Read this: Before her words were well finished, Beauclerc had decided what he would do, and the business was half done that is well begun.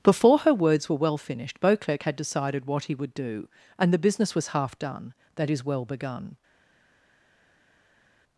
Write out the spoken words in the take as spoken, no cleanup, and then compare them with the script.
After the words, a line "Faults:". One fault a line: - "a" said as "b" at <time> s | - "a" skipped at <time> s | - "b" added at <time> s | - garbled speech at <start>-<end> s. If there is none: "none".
Before her words were well finished, Beauclerc had decided what he would do, and the business was half done that is well begun.
Faults:
none